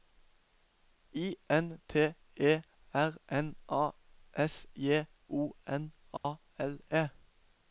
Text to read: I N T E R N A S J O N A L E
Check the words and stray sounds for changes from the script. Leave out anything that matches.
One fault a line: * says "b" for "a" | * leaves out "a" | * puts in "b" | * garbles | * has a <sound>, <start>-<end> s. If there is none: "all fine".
* has a dropout, 6.2-6.2 s